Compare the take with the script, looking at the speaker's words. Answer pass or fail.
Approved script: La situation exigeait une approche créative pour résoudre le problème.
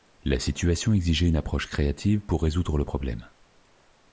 pass